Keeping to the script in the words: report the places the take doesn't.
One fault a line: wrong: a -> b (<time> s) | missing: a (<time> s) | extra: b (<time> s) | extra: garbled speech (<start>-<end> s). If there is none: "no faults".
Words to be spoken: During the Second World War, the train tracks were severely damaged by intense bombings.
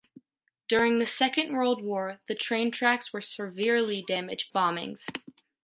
missing: by intense (4.5 s)